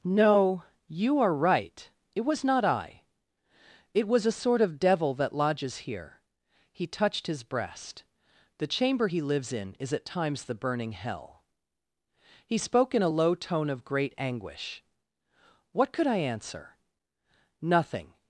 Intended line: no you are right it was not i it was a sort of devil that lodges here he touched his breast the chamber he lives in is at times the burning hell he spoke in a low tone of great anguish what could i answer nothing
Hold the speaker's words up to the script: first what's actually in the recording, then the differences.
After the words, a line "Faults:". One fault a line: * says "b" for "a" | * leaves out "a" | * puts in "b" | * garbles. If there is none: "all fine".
no you are right it was not i it was a sort of devil that lodges here he touched his breast the chamber he lives in is at times the burning hell he spoke in a low tone of great anguish what could i answer nothing
Faults:
all fine